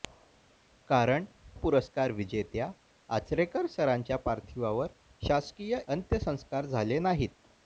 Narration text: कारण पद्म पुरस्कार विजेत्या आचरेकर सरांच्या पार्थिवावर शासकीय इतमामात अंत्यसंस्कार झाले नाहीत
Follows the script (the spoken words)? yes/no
no